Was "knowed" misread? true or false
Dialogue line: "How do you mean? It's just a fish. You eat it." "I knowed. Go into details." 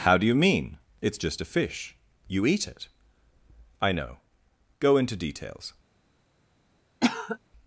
true